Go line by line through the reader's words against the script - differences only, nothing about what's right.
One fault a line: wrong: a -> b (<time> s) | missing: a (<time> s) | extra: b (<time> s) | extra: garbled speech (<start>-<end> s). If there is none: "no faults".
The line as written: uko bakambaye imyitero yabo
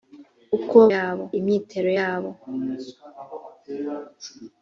wrong: bakambaye -> yabo (0.9 s)